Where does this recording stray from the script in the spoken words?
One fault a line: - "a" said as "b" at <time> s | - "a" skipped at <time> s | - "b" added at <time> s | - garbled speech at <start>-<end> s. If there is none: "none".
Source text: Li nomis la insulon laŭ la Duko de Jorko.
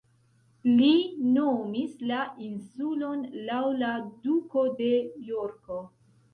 none